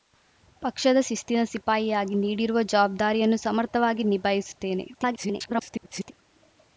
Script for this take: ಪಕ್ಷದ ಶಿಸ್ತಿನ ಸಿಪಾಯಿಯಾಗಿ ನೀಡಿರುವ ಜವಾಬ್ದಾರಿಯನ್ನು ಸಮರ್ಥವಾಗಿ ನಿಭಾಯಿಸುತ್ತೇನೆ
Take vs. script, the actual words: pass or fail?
fail